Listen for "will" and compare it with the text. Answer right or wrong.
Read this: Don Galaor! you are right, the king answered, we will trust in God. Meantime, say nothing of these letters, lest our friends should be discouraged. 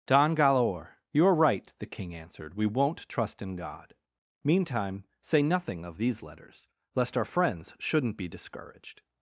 wrong